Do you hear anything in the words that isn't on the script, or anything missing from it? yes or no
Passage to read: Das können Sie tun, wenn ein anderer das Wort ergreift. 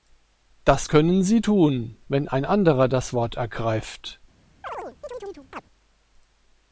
no